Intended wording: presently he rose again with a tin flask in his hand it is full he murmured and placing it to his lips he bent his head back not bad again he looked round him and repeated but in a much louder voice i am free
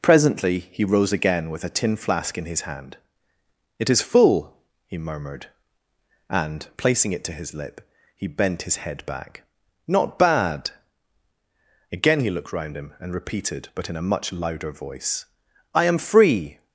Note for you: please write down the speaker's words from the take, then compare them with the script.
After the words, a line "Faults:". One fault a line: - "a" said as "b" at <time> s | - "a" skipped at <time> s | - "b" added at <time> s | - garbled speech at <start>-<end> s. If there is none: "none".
presently he rose again with a tin flask in his hand it is full he murmured and placing it to his lip he bent his head back not bad again he looked round him and repeated but in a much louder voice i am free
Faults:
- "lips" said as "lip" at 7.5 s